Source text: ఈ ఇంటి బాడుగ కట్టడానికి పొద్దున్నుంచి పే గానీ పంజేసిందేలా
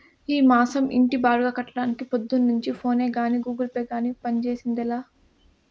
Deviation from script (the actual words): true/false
true